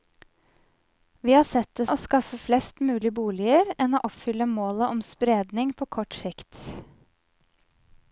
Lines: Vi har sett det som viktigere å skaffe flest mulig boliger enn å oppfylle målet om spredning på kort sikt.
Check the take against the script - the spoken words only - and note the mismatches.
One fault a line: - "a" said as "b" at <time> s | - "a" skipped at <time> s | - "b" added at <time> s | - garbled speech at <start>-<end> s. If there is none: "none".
- "som viktigere" skipped at 1.9 s